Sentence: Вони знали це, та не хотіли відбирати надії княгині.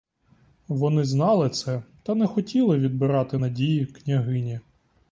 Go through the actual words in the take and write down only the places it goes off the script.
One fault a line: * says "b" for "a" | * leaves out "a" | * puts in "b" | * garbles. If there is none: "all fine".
all fine